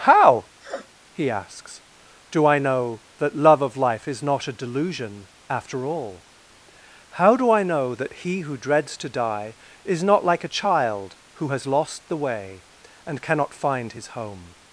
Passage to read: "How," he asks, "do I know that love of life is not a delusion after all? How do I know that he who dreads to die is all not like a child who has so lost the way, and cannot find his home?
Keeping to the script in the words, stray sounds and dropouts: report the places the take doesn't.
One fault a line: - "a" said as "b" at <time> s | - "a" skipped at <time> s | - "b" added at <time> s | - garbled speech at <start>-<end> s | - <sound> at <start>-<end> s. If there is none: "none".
- sniff at 0.6-0.9 s
- "all" skipped at 10.0 s
- "so" skipped at 11.7 s